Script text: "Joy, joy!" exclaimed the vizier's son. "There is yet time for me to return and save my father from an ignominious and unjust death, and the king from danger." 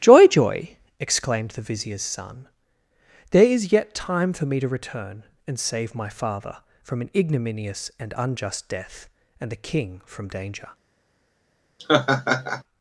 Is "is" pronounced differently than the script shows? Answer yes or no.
no